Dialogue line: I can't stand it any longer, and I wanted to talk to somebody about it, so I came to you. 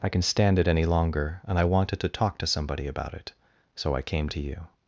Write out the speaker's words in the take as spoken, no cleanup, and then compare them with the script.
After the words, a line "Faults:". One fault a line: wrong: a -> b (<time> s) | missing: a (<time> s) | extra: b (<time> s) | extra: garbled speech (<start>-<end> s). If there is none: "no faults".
I can stand it any longer, and I wanted to talk to somebody about it, so I came to you.
Faults:
wrong: can't -> can (0.1 s)